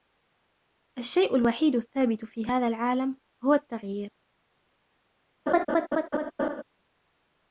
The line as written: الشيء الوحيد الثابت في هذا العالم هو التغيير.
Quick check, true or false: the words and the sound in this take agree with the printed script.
false